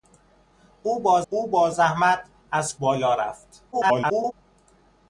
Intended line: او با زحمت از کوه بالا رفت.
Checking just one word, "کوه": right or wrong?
wrong